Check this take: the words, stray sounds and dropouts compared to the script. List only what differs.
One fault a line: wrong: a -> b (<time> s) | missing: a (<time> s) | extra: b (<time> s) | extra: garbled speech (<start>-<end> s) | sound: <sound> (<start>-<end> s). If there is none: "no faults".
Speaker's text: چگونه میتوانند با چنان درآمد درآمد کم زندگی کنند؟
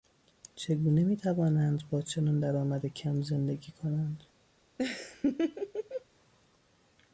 missing: درآمد (2.8 s)
sound: laugh (4.8-6.1 s)